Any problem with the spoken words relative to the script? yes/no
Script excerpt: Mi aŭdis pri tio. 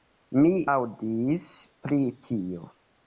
no